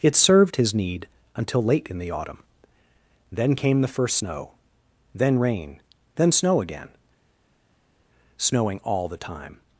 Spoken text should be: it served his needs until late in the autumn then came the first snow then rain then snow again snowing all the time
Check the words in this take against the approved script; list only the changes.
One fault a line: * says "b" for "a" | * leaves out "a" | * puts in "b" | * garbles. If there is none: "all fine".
* says "need" for "needs"